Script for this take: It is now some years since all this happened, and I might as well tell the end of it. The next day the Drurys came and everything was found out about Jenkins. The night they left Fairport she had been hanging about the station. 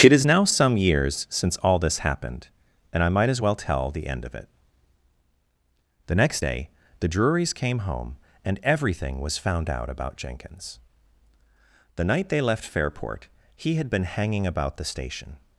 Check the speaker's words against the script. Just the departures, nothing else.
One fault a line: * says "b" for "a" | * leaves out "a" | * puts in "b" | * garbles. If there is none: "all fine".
* puts in "home"
* says "he" for "she"